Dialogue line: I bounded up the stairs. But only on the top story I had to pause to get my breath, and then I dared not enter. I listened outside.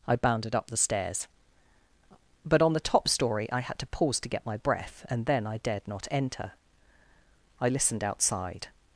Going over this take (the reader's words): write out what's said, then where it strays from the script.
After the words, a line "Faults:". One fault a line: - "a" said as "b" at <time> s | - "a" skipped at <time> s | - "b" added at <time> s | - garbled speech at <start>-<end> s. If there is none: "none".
I bounded up the stairs. But on the top story I had to pause to get my breath, and then I dared not enter. I listened outside.
Faults:
- "only" skipped at 2.6 s